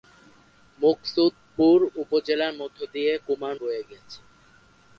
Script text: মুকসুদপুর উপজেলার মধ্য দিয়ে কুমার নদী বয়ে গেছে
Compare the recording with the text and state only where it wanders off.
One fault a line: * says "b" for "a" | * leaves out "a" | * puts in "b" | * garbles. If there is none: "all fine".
* leaves out "নদী"